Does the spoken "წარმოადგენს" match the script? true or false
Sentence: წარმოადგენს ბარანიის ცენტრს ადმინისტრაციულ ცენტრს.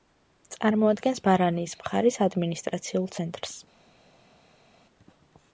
true